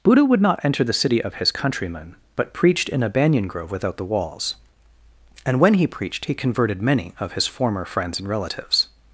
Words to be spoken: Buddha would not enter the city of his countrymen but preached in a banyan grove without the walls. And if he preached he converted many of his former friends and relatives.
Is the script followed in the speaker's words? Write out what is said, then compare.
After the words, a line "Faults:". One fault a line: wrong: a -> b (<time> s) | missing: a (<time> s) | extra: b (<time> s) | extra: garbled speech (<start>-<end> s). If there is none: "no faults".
Buddha would not enter the city of his countrymen but preached in a banyan grove without the walls. And when he preached he converted many of his former friends and relatives.
Faults:
wrong: if -> when (5.6 s)